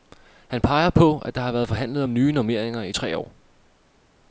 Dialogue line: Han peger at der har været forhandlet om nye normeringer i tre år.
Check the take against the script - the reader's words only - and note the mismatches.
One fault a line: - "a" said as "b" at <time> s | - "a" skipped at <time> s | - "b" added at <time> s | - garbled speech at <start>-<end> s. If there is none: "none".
- "på" added at 0.9 s